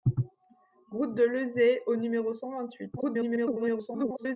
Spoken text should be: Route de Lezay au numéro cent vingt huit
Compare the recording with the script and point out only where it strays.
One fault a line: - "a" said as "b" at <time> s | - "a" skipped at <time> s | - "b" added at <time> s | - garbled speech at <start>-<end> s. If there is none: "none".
- garbled speech at 3.0-4.4 s